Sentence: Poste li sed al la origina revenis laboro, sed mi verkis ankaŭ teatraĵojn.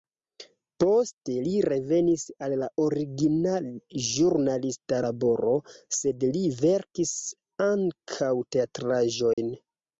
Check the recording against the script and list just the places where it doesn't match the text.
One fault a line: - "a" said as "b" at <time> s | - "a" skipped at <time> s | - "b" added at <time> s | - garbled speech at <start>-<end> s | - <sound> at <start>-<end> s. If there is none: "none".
- "sed" said as "revenis" at 1.6 s
- "revenis" said as "ĵurnalista" at 4.1 s
- "mi" said as "li" at 6.4 s
- dropout at 9.3-9.4 s